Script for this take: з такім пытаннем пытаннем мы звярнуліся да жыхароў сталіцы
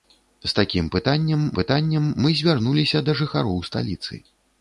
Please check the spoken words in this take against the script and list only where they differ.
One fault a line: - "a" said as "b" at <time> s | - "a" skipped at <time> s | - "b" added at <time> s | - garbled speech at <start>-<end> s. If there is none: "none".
none